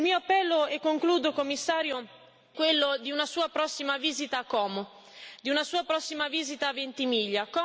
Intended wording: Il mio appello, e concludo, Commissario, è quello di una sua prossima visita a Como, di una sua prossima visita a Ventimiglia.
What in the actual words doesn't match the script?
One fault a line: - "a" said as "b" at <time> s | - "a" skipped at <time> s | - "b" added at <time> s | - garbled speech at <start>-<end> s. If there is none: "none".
- "è" skipped at 2.1 s